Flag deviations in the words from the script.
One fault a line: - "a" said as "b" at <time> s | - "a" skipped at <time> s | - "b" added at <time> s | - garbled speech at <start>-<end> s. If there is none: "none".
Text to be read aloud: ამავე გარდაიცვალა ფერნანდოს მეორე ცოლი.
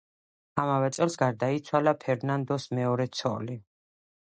- "წელს" added at 1.0 s